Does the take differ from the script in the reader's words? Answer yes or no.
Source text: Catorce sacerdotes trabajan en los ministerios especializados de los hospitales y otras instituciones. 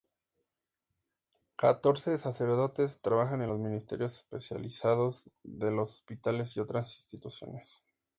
no